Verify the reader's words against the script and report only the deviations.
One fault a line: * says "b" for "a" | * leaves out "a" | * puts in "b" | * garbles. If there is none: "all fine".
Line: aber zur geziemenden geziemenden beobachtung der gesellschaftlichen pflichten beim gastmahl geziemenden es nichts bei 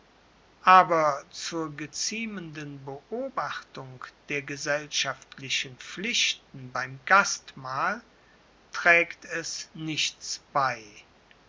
* leaves out "geziemenden"
* says "trägt" for "geziemenden"